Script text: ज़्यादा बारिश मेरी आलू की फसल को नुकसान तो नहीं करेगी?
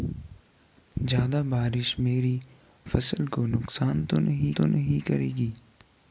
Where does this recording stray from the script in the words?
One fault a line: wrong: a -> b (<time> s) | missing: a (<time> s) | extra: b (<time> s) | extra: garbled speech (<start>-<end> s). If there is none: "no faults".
missing: आलू की (2.4 s)
extra: तो नहीं (4.5 s)